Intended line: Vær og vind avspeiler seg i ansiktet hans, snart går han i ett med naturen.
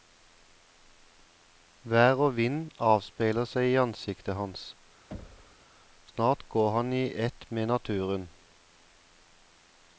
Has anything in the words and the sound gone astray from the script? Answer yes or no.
yes